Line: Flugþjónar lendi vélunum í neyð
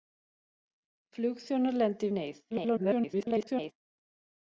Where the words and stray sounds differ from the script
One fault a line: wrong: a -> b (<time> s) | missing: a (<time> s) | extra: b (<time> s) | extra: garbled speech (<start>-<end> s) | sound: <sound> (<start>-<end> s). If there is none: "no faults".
missing: vélunum (2.1 s)
extra: garbled speech (2.5-3.7 s)